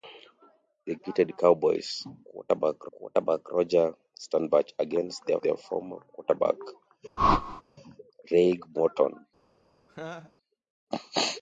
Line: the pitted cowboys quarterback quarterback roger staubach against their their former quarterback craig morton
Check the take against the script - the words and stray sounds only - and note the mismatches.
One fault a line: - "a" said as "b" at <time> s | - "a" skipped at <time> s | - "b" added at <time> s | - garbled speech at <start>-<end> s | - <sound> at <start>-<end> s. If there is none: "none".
- whoosh at 7.2-7.6 s
- laugh at 9.9-10.3 s